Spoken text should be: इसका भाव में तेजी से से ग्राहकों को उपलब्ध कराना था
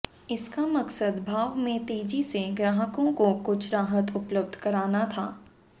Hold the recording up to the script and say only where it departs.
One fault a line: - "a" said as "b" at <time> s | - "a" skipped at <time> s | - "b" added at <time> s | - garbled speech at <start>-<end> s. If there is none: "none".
- "मकसद" added at 0.7 s
- "से" skipped at 2.4 s
- "कुछ राहत" added at 3.4 s